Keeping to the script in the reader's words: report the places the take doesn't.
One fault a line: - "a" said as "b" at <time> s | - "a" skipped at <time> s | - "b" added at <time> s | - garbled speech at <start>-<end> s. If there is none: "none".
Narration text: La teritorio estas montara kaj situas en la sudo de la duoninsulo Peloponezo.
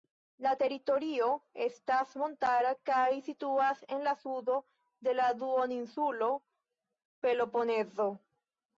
none